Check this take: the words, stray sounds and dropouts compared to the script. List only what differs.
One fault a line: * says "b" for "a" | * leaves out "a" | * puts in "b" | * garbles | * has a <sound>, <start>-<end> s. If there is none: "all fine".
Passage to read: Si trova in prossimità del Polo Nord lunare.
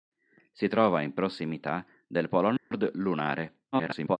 * has a dropout, 2.6-2.7 s
* garbles